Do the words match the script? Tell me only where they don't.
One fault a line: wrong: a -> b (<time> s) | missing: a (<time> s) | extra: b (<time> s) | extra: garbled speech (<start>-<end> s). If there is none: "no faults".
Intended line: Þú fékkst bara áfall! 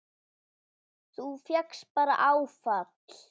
no faults